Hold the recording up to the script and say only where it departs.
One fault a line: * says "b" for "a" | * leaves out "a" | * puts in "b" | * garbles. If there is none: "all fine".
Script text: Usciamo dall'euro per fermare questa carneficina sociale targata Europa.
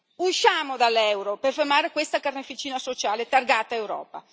all fine